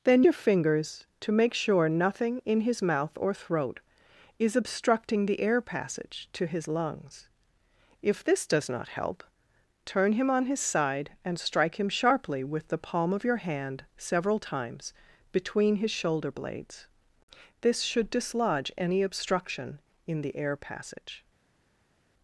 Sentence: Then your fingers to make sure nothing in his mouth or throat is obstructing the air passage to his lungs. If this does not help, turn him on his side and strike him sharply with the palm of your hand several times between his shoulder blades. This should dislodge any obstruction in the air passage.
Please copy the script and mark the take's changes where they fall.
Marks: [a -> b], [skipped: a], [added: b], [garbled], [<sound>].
Then your fingers to make sure nothing in his mouth or throat is obstructing the air passage to his lungs. If this does not help, turn him on his side and strike him sharply with the palm of your hand several times between his shoulder blades. This should dislodge any obstruction in the air passage.